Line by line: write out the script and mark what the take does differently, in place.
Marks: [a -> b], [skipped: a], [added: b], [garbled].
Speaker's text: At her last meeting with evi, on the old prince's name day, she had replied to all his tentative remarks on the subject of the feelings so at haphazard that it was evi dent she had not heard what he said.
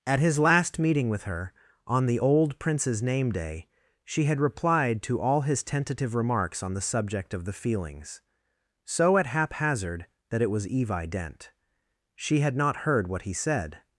At [her -> his] last meeting with [evi, -> her] on the old prince's name day, she had replied to all his tentative remarks on the subject of the feelings so at haphazard that it was evi dent she had not heard what he said.